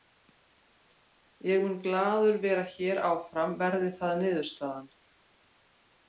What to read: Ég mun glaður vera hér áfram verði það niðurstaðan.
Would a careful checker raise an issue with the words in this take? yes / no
no